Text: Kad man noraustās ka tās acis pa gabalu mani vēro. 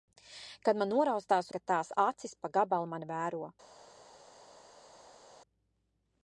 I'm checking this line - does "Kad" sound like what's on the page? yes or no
yes